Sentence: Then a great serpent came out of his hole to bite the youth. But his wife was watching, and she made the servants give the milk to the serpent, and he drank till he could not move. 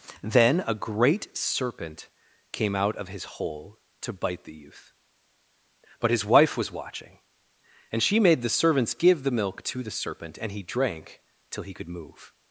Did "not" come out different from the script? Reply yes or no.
yes